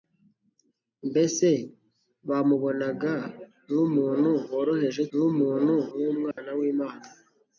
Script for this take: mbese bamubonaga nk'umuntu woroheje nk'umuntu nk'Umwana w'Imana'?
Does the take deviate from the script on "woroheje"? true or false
false